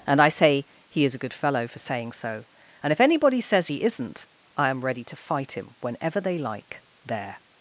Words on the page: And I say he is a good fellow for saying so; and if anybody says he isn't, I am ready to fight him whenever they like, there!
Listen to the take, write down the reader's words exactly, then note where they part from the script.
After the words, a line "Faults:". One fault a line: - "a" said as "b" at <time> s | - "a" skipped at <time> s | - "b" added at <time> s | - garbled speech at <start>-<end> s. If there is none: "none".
And I say he is a good fellow for saying so; and if anybody says he isn't, I am ready to fight him whenever they like, there!
Faults:
none